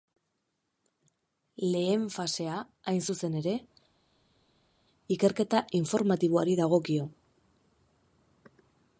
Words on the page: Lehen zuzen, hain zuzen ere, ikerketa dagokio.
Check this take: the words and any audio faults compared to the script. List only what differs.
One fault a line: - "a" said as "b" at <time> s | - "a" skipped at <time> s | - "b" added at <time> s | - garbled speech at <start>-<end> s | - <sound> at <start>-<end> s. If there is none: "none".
- "zuzen" said as "fasea" at 2.1 s
- "informatiboari" added at 5.8 s